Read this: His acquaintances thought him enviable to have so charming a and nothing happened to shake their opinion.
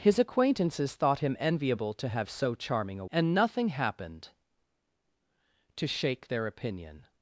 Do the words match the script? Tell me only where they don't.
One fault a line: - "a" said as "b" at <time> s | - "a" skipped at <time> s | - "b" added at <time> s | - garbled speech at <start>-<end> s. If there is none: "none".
none